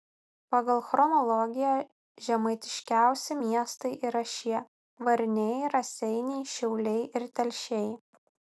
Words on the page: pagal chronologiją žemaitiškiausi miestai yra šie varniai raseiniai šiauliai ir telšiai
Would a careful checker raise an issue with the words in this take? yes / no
no